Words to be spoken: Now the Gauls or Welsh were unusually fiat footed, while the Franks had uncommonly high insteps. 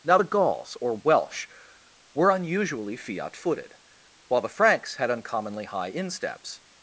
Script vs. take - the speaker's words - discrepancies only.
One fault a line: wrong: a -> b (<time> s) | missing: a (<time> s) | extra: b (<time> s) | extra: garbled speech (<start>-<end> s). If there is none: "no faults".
no faults